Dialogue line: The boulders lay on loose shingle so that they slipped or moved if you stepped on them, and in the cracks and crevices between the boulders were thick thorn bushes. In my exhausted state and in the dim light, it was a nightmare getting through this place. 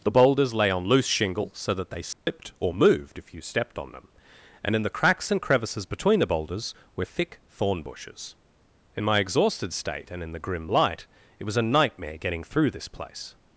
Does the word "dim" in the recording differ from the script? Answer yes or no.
yes